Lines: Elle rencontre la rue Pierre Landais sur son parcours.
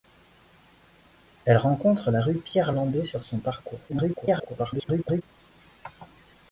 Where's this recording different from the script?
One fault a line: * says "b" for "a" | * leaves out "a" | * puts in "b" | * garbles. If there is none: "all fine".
* garbles